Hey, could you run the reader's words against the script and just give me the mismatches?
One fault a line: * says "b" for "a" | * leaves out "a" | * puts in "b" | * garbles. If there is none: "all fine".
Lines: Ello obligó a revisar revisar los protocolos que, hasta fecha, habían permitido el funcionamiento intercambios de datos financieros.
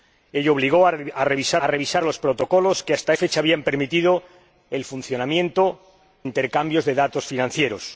all fine